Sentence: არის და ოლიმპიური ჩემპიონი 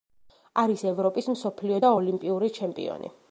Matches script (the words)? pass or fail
fail